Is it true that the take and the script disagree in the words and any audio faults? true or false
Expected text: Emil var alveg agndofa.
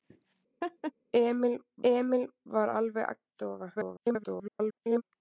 true